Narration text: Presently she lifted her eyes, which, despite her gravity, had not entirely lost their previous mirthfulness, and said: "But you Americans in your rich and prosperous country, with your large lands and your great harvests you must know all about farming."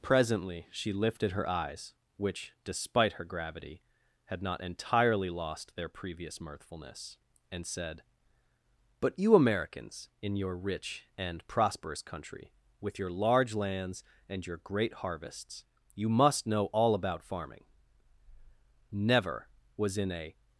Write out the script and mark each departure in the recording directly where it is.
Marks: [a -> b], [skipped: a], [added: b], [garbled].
Presently she lifted her eyes, which, despite her gravity, had not entirely lost their previous mirthfulness, and said: "But you Americans in your rich and prosperous country, with your large lands and your great harvests you must know all about farming." [added: Never was in a]